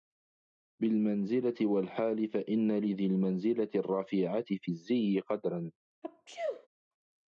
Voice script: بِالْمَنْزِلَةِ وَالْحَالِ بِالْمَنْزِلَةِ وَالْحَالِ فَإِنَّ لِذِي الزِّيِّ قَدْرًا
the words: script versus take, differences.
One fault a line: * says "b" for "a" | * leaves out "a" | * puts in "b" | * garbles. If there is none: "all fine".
* says "فَإِنَّ لِذِي الْمَنْزِلَةِ الرَّفِيعَةِ فِي" for "بِالْمَنْزِلَةِ وَالْحَالِ فَإِنَّ لِذِي"